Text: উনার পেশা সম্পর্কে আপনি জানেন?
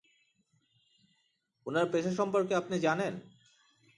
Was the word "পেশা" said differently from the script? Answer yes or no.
no